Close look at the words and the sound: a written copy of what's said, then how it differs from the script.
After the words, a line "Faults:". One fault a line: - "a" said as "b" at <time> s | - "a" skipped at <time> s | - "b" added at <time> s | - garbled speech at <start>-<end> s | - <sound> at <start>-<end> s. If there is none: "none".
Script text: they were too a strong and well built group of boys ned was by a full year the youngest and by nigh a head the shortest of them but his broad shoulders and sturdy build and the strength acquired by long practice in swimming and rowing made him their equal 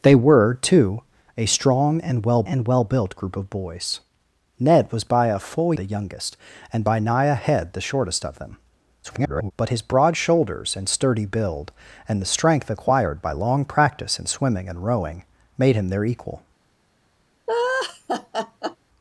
they were too a strong and well and well built group of boys ned was by a full the youngest and by nigh a head the shortest of them [garbled] but his broad shoulders and sturdy build and the strength acquired by long practice in swimming and rowing made him their equal
Faults:
- "and well" added at 2.4 s
- "year" skipped at 5.7 s
- garbled speech at 9.0-9.5 s
- laugh at 17.5-18.8 s